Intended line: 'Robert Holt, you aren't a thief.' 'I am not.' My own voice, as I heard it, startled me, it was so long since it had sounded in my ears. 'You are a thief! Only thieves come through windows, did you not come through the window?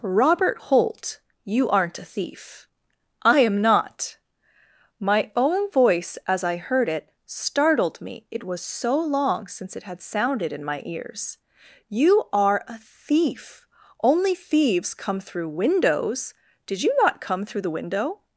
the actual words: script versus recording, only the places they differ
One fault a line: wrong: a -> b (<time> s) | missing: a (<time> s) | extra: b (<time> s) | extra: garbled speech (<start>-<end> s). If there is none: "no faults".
no faults